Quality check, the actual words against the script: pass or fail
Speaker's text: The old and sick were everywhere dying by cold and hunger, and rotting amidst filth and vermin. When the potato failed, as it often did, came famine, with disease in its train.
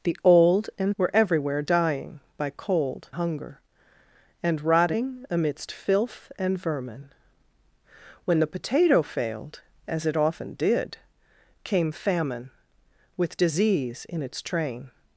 fail